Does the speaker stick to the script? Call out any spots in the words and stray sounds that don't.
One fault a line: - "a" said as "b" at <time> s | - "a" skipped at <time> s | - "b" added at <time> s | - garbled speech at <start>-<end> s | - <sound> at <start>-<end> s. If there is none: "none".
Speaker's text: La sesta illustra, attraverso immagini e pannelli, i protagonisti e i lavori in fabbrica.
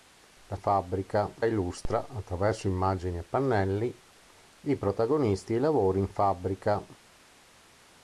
- "sesta" said as "fabbrica" at 0.6 s